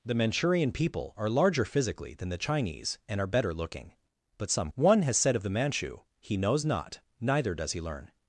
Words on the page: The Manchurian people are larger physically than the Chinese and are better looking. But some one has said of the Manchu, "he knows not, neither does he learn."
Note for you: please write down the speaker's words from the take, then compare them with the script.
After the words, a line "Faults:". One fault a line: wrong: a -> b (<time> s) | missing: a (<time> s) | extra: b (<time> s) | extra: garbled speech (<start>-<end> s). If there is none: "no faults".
The Manchurian people are larger physically than the Chinese and are better looking. But some one has said of the Manchu, "he knows not, neither does he learn."
Faults:
no faults